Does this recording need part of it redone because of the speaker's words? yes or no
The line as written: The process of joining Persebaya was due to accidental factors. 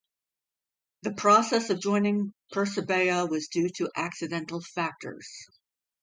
no